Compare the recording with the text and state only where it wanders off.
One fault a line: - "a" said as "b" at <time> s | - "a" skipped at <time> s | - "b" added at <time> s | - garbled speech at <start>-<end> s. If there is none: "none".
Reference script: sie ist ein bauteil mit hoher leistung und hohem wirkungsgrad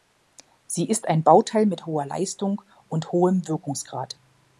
none